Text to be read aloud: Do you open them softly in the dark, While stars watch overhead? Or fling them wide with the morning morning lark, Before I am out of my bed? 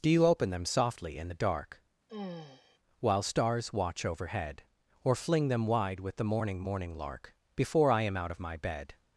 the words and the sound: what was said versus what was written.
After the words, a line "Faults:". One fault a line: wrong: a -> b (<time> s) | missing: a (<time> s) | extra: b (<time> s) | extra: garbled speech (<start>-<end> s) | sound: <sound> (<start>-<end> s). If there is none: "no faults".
Do you open them softly in the dark, While stars watch overhead? Or fling them wide with the morning morning lark, Before I am out of my bed?
Faults:
sound: sigh (2.1-2.8 s)